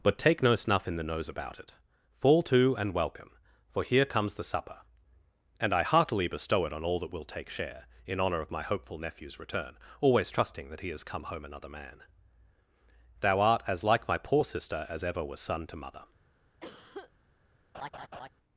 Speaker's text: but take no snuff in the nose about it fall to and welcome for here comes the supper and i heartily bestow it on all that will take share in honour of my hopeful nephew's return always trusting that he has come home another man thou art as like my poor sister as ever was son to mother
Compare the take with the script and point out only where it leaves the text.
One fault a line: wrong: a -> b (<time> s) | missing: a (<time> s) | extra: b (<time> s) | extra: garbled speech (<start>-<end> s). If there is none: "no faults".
no faults